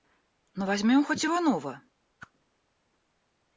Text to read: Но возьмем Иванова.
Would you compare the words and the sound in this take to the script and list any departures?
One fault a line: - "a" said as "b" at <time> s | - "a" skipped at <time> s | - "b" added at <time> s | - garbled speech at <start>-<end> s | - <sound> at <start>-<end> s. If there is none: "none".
- "хоть" added at 1.0 s
- whoosh at 2.2-2.3 s